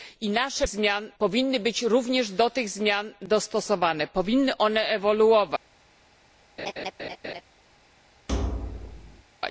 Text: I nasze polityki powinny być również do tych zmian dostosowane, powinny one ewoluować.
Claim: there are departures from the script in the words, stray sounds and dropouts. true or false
true